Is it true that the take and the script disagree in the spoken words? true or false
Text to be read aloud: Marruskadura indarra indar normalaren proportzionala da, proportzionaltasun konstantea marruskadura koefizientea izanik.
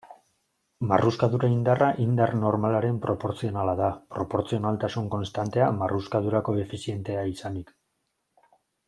false